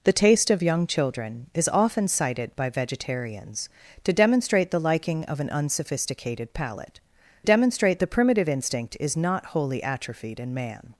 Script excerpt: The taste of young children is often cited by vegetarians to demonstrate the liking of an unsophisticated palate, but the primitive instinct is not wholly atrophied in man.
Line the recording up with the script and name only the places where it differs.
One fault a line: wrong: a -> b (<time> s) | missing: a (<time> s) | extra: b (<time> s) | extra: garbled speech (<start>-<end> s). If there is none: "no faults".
wrong: but -> demonstrate (7.4 s)